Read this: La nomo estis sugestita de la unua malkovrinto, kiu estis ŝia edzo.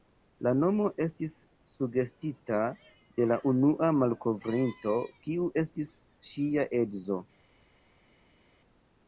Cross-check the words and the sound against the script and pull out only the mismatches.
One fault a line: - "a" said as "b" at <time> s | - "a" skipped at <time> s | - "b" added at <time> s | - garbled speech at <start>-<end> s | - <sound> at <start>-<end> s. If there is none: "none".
none